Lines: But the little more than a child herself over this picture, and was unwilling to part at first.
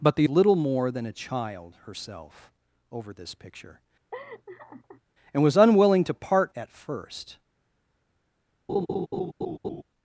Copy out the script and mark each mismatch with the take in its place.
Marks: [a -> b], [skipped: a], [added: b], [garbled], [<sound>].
But the little more than a child herself over this picture, [laugh] and was unwilling to part at first. [laugh]